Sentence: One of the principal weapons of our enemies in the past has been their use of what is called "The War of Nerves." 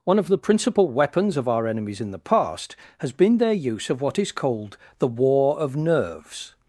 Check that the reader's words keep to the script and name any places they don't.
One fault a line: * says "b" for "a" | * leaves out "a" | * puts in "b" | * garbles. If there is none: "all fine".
all fine